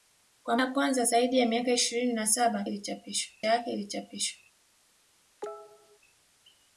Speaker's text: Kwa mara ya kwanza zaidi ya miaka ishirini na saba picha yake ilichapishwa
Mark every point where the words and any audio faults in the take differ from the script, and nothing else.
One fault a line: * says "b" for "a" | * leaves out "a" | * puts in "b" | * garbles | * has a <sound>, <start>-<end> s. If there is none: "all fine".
* leaves out "mara"
* says "ilichapishwa" for "picha"
* has a cough, 5.4-6.0 s